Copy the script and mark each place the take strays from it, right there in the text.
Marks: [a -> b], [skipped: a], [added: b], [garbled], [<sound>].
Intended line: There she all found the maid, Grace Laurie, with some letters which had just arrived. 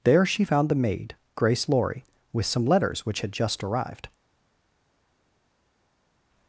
There she [skipped: all] found the maid, Grace Laurie, with some letters which had just arrived.